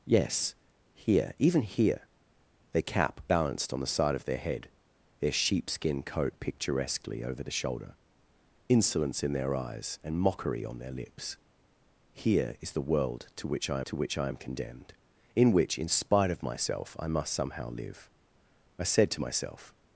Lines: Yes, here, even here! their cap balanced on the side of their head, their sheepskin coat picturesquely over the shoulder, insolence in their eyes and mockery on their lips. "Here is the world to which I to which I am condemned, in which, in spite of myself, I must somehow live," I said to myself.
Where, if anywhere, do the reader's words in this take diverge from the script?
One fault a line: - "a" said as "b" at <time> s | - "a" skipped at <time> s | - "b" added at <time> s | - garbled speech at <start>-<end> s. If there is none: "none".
none